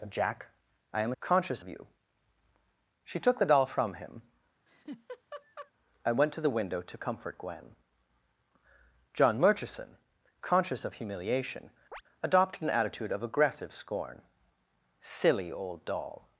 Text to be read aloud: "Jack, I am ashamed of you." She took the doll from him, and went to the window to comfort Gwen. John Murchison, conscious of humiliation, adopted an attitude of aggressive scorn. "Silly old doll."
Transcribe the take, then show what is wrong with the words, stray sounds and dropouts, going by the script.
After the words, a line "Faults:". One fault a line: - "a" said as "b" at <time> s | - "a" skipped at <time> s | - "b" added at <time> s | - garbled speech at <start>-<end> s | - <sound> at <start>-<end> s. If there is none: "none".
"Jack, I am conscious of you." She took the doll from him, and went to the window to comfort Gwen. John Murchison, conscious of humiliation, adopted an attitude of aggressive scorn. "Silly old doll."
Faults:
- "ashamed" said as "conscious" at 1.2 s
- laugh at 4.7-5.7 s
- chirp at 11.9-12.0 s